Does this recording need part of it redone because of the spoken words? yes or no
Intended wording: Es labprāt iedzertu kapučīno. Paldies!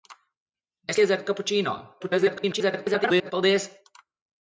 yes